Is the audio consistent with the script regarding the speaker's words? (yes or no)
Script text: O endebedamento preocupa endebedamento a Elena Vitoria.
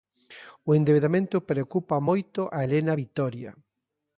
no